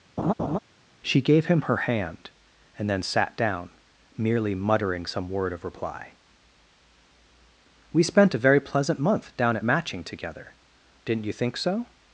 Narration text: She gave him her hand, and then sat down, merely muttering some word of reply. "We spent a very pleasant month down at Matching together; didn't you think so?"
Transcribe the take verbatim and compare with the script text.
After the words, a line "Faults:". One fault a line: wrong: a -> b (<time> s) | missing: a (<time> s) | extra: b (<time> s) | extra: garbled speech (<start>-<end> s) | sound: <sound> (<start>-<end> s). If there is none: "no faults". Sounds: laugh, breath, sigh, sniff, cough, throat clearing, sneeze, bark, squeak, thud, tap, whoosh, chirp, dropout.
She gave him her hand, and then sat down, merely muttering some word of reply. "We spent a very pleasant month down at Matching together; didn't you think so?"
Faults:
sound: laugh (0.2-0.6 s)